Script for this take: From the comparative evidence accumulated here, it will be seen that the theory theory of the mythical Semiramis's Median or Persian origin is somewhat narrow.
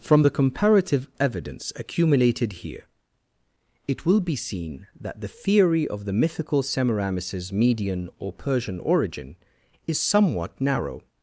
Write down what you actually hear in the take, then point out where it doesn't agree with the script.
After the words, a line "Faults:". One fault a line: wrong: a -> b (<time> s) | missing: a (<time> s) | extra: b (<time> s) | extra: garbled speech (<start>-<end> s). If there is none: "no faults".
From the comparative evidence accumulated here, it will be seen that the theory of the mythical Semiramis's Median or Persian origin is somewhat narrow.
Faults:
missing: theory (5.9 s)